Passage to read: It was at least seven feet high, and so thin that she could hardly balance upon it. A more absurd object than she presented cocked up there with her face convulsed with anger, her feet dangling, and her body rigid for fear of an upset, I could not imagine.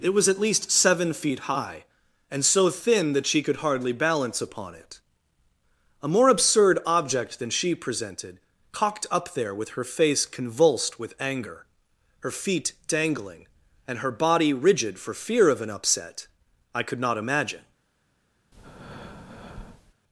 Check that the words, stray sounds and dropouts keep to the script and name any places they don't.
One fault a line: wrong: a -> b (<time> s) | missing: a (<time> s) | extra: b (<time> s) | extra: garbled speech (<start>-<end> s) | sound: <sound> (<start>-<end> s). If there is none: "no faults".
sound: breath (18.5-19.9 s)